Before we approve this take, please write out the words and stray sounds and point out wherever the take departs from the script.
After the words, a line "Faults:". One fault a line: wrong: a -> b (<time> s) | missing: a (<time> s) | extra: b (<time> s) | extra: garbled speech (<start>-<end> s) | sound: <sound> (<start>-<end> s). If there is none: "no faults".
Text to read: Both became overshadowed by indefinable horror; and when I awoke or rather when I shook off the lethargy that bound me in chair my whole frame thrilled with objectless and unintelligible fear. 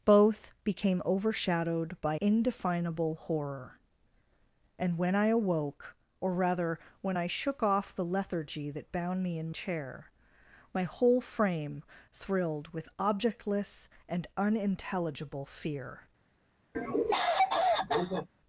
Both became overshadowed by indefinable horror; and when I awoke or rather when I shook off the lethargy that bound me in chair my whole frame thrilled with objectless and unintelligible fear.
Faults:
sound: cough (16.7-18.3 s)